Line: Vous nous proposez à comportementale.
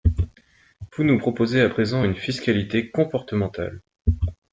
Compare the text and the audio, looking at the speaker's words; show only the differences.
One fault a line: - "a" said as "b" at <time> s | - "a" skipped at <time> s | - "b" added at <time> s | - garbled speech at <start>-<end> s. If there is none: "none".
- "présent une fiscalité" added at 1.7 s